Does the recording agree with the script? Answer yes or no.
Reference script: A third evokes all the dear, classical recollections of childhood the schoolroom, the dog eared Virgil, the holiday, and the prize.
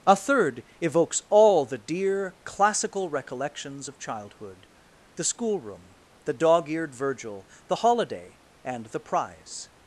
yes